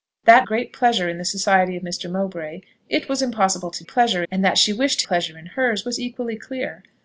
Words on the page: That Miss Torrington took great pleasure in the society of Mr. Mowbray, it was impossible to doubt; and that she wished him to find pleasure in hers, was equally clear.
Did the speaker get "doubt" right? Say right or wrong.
wrong